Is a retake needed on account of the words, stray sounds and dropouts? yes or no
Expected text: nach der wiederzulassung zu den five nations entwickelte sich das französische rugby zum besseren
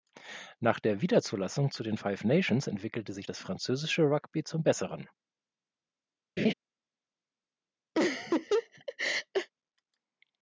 yes